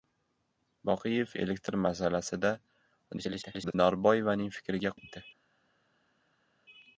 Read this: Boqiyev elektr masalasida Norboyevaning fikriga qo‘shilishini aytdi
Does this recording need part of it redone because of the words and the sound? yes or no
yes